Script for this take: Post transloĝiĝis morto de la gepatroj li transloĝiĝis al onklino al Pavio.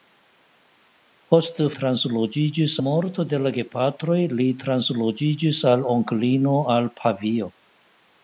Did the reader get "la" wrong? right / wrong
right